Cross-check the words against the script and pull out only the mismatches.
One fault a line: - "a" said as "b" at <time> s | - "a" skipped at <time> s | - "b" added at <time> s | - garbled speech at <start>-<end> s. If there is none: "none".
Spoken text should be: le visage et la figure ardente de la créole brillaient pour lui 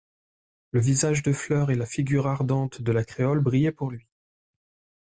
- "de fleur" added at 1.2 s